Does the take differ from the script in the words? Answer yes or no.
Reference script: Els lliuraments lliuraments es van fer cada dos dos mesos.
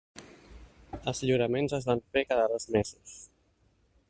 yes